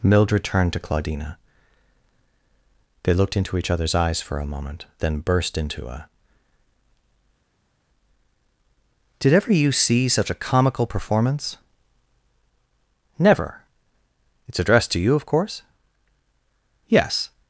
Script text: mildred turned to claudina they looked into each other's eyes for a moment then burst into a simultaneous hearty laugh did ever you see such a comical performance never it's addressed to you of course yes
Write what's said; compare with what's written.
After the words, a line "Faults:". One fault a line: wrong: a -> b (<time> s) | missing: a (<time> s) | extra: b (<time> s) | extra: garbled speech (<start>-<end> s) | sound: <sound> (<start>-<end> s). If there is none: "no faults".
mildred turned to claudina they looked into each other's eyes for a moment then burst into a did ever you see such a comical performance never it's addressed to you of course yes
Faults:
missing: simultaneous hearty laugh (6.1 s)